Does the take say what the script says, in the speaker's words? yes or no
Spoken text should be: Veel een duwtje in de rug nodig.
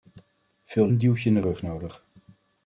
yes